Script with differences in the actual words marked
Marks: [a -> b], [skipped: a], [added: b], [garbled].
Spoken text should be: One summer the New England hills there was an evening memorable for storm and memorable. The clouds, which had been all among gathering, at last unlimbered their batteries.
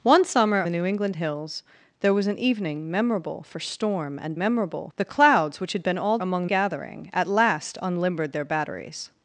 One summer the New England hills there was an evening memorable for storm and memorable. The clouds, which had been all among gathering, at last unlimbered their batteries.